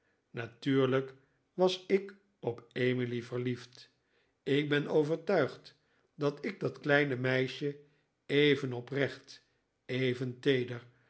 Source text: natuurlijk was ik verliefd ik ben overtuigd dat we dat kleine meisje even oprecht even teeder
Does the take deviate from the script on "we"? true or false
true